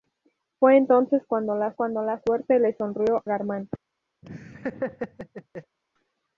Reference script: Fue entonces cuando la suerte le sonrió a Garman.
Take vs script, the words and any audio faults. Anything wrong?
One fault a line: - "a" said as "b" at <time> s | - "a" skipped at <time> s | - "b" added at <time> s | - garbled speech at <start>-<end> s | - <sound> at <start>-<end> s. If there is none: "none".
- "cuando la" added at 1.8 s
- "a" skipped at 3.2 s
- laugh at 4.2-5.8 s